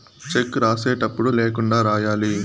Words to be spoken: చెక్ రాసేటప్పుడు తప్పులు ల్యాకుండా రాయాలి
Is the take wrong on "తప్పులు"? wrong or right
wrong